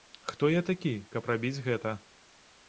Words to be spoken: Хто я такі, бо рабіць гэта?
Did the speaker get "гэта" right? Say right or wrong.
right